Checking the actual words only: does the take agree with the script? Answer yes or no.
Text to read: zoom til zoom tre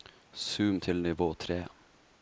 no